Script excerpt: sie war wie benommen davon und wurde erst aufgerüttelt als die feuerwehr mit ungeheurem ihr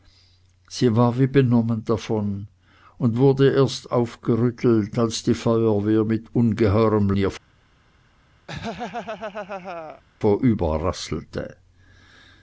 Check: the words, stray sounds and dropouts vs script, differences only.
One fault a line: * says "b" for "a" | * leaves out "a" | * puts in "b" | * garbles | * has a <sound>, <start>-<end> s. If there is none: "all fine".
* has a laugh, 8.5-10.0 s